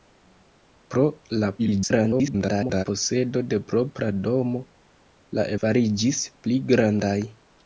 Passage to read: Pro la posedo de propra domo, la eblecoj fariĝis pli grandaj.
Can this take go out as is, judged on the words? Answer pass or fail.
fail